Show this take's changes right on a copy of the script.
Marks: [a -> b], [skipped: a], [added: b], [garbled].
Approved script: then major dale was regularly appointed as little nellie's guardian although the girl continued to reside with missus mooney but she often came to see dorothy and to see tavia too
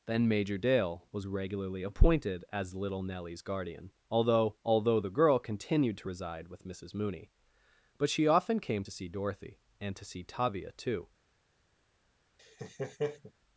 then major dale was regularly appointed as little nellie's guardian although [added: although] the girl continued to reside with missus mooney but she often came to see dorothy and to see tavia too